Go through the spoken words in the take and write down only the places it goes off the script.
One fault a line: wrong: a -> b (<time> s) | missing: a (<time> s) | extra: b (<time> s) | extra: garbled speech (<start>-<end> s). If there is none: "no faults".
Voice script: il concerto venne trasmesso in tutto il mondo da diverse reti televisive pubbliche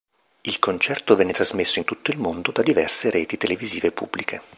no faults